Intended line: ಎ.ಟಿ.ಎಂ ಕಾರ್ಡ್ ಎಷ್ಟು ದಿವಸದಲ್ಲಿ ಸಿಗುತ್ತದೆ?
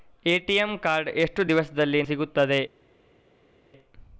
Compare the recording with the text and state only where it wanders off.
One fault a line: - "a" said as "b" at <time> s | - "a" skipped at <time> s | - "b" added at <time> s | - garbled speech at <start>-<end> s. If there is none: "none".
none